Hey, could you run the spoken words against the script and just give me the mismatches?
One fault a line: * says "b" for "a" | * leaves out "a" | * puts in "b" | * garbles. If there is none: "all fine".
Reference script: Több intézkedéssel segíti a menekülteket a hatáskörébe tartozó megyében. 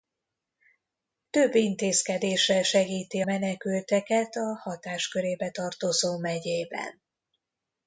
* leaves out "a"